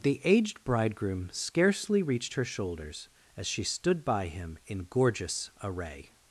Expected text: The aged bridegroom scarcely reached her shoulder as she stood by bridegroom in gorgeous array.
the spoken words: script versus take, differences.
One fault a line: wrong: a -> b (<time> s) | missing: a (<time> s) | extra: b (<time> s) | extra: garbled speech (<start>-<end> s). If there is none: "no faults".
wrong: shoulder -> shoulders (2.5 s)
wrong: bridegroom -> him (4.3 s)